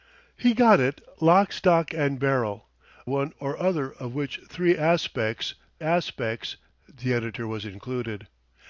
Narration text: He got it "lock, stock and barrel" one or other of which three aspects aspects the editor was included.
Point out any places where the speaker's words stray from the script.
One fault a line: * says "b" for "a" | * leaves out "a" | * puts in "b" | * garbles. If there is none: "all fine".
all fine